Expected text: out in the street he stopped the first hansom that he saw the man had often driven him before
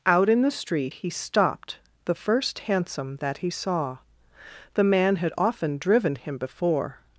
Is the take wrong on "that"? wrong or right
right